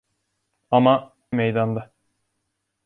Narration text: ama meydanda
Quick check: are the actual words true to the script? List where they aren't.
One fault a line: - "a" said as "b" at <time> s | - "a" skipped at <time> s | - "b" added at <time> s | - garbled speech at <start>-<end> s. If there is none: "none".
none